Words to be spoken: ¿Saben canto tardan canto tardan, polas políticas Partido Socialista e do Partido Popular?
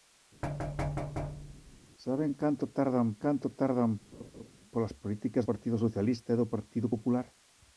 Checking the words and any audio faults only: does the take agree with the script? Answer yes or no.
no